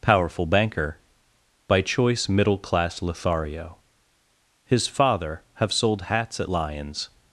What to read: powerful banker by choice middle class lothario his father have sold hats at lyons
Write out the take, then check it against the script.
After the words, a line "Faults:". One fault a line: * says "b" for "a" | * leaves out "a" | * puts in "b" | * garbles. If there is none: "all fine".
powerful banker by choice middle class lothario his father have sold hats at lyons
Faults:
all fine